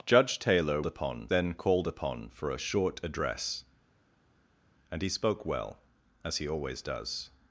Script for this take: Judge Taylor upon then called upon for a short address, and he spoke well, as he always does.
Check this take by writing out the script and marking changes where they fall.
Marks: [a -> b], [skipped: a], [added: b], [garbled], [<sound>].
Judge Taylor upon then called upon for a short address, and he spoke well, as he always does.